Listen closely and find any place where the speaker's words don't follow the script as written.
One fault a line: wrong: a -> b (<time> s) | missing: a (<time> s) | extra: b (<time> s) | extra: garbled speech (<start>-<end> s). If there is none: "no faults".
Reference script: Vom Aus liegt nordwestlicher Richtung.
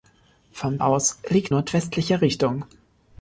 no faults